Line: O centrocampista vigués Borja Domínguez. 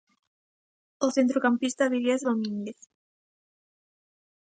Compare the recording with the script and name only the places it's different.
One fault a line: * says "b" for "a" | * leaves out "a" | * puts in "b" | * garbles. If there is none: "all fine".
* leaves out "Borja"